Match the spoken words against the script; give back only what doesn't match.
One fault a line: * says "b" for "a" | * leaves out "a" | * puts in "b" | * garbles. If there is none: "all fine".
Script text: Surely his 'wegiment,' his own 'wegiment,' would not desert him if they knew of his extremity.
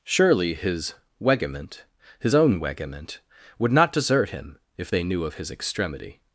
all fine